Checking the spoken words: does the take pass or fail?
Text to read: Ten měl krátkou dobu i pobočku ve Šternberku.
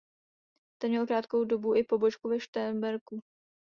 pass